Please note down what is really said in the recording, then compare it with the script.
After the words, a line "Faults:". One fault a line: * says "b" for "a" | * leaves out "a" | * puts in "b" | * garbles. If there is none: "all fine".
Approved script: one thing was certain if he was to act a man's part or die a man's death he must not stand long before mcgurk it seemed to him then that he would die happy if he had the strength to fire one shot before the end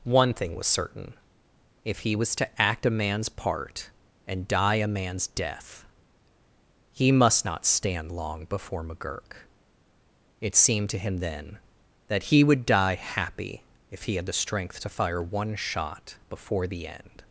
one thing was certain if he was to act a man's part and die a man's death he must not stand long before mcgurk it seemed to him then that he would die happy if he had the strength to fire one shot before the end
Faults:
* says "and" for "or"